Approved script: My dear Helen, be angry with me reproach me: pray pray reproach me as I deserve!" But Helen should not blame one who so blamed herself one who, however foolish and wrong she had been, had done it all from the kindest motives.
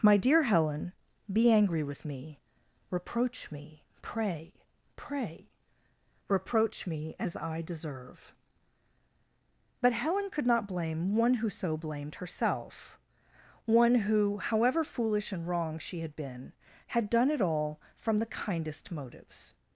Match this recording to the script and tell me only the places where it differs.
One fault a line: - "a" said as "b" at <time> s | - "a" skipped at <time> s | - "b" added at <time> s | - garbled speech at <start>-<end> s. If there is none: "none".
- "should" said as "could" at 10.3 s